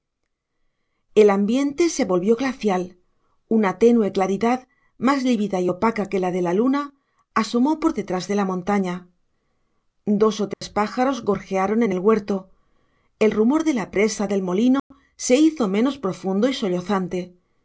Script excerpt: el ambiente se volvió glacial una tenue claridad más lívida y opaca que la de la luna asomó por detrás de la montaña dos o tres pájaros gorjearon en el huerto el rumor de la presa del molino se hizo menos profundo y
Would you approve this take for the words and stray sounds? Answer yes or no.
no